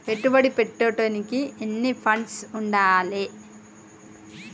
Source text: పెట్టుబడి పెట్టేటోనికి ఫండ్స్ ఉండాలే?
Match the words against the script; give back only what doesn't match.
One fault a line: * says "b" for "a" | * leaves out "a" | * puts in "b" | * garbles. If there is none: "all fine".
* puts in "ఎన్ని"